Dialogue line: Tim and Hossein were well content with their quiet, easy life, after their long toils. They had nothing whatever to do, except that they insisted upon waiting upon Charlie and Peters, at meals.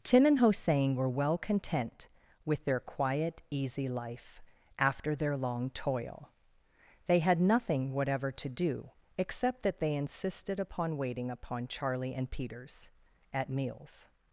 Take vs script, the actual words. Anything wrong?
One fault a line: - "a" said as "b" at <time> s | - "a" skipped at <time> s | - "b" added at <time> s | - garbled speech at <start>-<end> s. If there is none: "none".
- "toils" said as "toil" at 5.7 s